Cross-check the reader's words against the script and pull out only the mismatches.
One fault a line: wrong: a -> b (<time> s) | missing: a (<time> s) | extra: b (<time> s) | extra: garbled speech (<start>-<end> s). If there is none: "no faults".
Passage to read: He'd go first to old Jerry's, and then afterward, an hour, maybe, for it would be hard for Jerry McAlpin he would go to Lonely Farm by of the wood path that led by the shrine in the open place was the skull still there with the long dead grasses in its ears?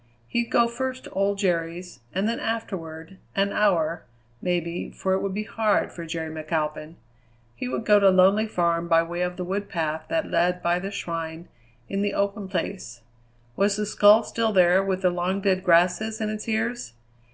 extra: way (9.0 s)